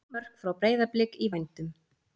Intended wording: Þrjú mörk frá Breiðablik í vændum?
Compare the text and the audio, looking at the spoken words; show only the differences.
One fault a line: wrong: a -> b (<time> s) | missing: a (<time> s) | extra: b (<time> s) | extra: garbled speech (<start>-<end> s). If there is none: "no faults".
no faults